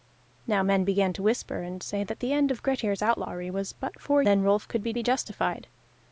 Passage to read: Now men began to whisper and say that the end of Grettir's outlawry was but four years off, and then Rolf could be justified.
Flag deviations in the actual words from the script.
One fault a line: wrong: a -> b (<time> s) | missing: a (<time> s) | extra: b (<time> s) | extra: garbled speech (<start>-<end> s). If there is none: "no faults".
missing: years off and (4.2 s)
extra: be (4.9 s)